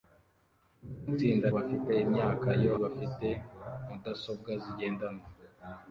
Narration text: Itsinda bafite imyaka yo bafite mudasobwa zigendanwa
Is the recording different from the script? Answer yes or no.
no